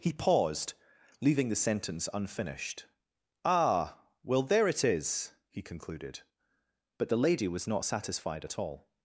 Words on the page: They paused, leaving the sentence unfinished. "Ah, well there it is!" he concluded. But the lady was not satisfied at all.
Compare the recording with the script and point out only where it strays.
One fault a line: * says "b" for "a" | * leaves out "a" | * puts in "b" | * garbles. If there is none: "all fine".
* says "He" for "They"